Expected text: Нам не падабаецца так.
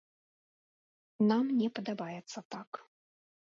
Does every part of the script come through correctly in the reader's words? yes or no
yes